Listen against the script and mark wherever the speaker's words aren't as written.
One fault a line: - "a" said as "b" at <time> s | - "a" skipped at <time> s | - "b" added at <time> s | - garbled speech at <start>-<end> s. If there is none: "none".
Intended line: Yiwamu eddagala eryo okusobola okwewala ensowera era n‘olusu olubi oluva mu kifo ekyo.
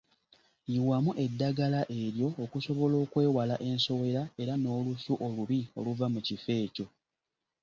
none